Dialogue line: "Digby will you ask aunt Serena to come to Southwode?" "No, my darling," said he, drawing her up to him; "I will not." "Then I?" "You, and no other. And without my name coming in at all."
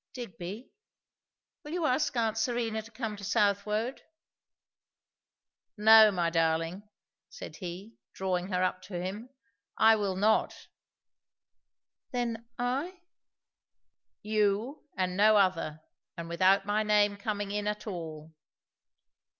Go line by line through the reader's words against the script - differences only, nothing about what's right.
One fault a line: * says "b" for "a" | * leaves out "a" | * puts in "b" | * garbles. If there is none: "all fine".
all fine